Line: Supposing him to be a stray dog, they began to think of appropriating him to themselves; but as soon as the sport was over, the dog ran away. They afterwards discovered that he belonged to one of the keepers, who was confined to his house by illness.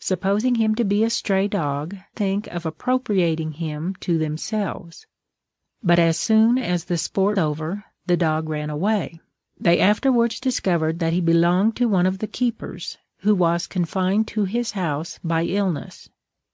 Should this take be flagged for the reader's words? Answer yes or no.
yes